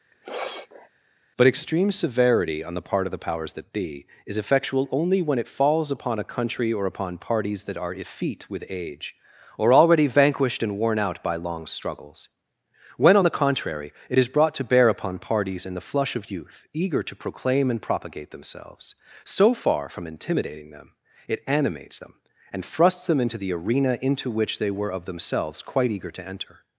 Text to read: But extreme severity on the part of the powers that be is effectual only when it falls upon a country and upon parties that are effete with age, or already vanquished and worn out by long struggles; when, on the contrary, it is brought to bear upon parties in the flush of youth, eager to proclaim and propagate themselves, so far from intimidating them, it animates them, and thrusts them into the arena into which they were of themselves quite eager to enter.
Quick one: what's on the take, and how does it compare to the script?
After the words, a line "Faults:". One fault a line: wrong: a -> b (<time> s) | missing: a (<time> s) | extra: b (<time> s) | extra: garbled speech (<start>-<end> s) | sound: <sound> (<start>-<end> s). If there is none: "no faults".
But extreme severity on the part of the powers that be is effectual only when it falls upon a country or upon parties that are effete with age, or already vanquished and worn out by long struggles; when, on the contrary, it is brought to bear upon parties in the flush of youth, eager to proclaim and propagate themselves, so far from intimidating them, it animates them, and thrusts them into the arena into which they were of themselves quite eager to enter.
Faults:
sound: sniff (0.1-0.9 s)
wrong: and -> or (6.7 s)